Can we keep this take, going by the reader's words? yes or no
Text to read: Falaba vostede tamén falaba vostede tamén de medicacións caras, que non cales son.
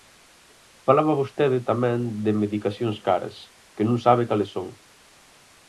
no